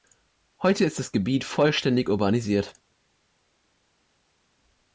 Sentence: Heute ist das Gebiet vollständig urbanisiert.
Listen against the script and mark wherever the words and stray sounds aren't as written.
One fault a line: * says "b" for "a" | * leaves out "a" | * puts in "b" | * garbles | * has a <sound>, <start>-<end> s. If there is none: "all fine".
all fine